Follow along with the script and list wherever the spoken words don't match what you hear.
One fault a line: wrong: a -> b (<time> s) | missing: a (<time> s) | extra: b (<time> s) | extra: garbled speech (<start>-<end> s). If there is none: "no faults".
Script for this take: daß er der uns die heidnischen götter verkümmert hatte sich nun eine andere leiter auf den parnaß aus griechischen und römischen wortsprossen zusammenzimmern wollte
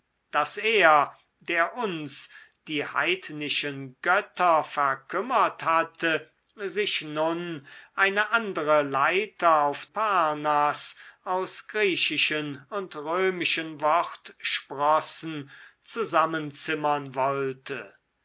missing: den (9.8 s)